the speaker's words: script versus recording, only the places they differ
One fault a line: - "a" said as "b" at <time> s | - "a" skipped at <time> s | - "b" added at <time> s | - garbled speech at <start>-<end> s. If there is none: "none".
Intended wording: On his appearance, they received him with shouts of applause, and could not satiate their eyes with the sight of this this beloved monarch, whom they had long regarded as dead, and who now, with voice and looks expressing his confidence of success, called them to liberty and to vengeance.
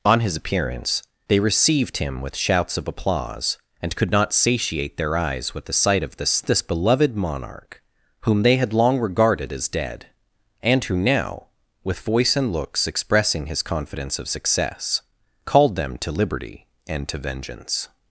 none